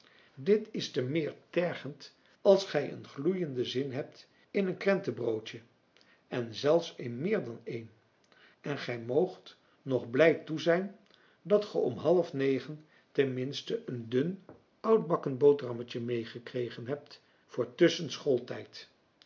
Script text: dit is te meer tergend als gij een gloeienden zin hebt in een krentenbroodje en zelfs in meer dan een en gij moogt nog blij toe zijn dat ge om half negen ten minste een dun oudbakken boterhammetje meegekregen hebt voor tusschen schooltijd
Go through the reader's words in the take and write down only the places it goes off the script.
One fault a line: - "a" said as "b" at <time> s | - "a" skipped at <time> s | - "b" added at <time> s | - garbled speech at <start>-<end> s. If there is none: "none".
none